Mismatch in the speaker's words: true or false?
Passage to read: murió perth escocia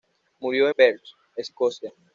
false